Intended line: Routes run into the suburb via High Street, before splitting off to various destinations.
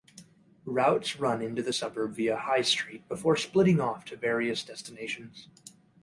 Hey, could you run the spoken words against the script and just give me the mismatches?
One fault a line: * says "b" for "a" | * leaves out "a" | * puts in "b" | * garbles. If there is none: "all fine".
all fine